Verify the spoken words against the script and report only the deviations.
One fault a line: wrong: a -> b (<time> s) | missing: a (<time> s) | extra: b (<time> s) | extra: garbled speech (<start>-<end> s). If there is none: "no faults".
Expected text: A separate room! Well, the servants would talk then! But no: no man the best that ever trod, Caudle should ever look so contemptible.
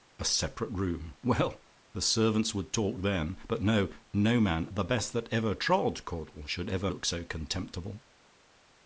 no faults